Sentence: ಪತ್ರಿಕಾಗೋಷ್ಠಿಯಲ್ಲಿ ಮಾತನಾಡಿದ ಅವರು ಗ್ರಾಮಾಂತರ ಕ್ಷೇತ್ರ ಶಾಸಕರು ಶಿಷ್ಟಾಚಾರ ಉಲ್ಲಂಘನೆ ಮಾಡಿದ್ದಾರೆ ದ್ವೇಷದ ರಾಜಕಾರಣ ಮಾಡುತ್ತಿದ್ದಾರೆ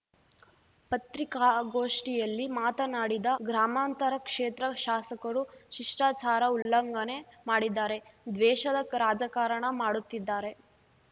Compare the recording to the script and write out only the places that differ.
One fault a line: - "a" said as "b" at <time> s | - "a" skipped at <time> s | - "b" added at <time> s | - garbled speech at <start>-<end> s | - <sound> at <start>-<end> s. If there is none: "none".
- "ಅವರು" skipped at 3.3 s
- dropout at 6.6-6.7 s